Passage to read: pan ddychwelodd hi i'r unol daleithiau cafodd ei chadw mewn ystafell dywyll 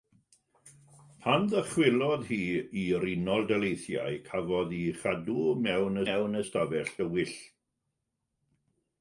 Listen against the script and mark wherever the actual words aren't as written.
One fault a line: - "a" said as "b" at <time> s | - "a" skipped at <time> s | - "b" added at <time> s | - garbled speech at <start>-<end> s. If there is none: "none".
- "mewn" added at 6.1 s